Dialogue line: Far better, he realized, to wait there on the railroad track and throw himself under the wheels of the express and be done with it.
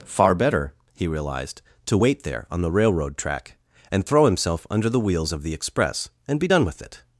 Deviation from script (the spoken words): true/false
false